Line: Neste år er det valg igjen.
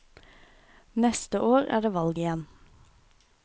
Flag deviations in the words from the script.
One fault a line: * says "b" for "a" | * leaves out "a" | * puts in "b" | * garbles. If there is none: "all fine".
all fine